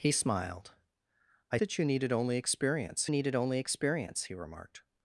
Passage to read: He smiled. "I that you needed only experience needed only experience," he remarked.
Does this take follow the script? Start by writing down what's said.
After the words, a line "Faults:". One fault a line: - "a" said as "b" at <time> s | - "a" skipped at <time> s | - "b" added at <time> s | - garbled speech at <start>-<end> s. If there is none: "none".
He smiled. "I that you needed only experience needed only experience," he remarked.
Faults:
none